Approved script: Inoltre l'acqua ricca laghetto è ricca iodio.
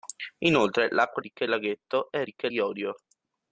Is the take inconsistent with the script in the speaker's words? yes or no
no